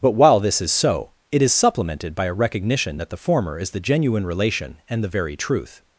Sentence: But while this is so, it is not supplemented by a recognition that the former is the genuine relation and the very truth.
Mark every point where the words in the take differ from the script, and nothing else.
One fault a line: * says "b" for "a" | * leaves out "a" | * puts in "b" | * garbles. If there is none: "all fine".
* leaves out "not"